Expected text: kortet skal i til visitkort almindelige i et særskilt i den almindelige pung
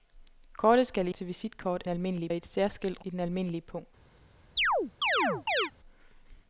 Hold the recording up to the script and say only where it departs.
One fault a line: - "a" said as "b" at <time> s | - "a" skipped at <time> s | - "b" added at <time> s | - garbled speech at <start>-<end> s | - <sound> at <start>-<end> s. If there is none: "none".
- chirp at 4.6-5.7 s